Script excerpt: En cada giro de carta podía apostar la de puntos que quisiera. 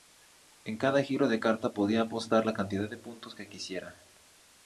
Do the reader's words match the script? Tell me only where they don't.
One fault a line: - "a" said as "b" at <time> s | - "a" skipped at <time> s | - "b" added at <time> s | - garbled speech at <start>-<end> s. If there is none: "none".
- "cantidad" added at 2.5 s